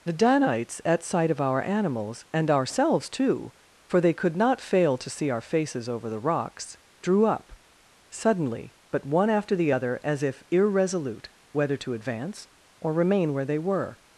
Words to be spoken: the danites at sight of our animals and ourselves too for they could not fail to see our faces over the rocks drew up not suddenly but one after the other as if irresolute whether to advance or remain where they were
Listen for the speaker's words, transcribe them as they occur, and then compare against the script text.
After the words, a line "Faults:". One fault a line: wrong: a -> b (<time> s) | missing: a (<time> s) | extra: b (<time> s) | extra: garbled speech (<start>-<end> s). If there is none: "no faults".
the danites at sight of our animals and ourselves too for they could not fail to see our faces over the rocks drew up suddenly but one after the other as if irresolute whether to advance or remain where they were
Faults:
missing: not (7.5 s)